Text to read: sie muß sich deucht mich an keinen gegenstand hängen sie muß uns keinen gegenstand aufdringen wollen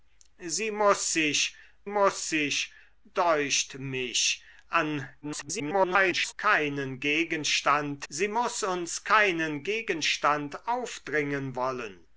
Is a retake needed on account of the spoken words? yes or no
yes